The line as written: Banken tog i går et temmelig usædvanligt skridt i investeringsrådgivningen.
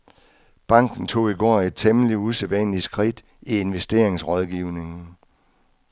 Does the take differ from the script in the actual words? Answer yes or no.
no